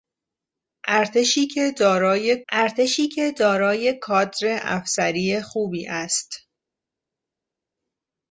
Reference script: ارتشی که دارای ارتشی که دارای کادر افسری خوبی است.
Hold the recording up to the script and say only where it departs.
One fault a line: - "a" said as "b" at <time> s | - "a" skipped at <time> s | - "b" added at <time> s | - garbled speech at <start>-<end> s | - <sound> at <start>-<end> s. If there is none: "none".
none